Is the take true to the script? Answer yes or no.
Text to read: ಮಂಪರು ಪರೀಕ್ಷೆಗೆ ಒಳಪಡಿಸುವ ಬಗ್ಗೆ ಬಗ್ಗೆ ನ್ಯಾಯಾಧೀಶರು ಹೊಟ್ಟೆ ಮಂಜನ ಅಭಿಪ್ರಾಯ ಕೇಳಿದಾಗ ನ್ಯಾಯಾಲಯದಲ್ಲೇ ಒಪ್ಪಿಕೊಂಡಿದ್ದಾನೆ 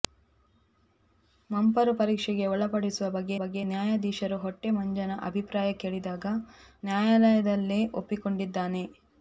yes